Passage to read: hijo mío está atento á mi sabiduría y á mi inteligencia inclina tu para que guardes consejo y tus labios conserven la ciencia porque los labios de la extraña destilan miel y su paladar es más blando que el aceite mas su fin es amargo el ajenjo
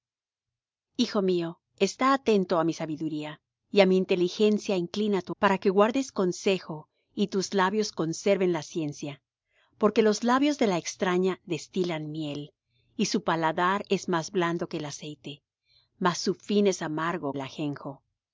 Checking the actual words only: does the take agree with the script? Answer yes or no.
yes